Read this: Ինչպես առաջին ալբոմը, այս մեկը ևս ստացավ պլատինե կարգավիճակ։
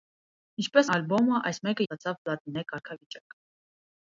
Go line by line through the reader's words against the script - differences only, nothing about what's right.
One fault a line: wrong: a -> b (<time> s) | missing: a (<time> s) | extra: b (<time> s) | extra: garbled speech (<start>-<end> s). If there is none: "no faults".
missing: առաջին (0.9 s)
missing: ևս (1.9 s)